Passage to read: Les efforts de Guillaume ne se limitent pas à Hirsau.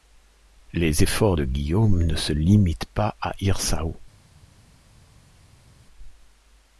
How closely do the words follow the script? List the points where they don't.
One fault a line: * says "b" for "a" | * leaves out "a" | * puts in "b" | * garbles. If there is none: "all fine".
all fine